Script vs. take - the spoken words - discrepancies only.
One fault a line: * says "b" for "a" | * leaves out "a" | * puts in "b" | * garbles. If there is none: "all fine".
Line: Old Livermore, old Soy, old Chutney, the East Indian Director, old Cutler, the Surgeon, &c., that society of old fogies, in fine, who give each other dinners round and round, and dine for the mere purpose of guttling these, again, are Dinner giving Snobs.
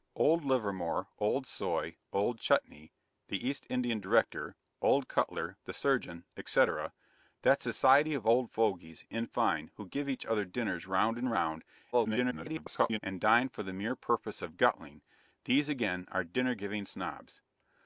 * garbles